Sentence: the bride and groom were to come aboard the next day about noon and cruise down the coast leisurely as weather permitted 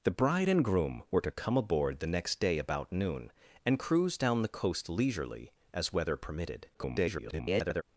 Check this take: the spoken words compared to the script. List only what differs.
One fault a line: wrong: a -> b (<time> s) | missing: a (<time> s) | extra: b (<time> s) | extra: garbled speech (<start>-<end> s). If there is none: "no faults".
extra: garbled speech (6.7-7.8 s)